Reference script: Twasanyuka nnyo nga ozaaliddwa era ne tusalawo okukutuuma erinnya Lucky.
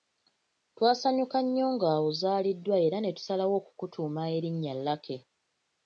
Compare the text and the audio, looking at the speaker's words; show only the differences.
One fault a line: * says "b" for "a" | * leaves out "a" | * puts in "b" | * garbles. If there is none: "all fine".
all fine